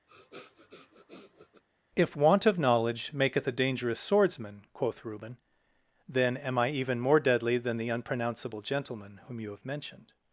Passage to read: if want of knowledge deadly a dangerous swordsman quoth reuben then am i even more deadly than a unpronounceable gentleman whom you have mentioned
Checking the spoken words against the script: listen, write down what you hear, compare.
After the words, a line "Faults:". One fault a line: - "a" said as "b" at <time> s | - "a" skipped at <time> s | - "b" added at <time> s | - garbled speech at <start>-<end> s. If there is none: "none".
if want of knowledge maketh a dangerous swordsman quoth reuben then am i even more deadly than the unpronounceable gentleman whom you have mentioned
Faults:
- "deadly" said as "maketh" at 3.1 s
- "a" said as "the" at 7.8 s